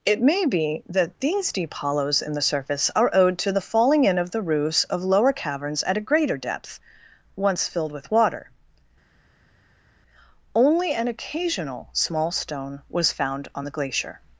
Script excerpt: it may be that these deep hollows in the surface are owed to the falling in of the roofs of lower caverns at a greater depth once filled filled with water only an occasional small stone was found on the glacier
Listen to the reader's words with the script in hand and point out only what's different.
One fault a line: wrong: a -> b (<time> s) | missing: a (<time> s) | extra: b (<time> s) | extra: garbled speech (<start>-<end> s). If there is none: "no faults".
missing: filled (7.9 s)